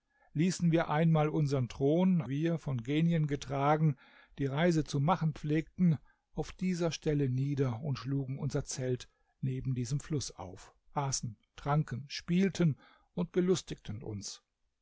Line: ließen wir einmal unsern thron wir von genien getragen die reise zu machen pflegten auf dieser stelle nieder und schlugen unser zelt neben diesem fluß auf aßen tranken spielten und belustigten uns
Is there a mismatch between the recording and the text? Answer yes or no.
no